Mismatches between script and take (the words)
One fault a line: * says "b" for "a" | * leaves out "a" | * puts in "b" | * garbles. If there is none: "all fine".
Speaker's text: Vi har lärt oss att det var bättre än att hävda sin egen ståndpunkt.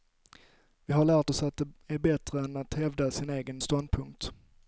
* says "är" for "var"